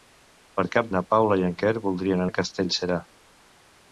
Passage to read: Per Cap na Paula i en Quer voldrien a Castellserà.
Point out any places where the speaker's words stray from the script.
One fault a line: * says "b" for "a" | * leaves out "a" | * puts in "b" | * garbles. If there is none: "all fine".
all fine